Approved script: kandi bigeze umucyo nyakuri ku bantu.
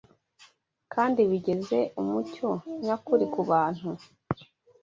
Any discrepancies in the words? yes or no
no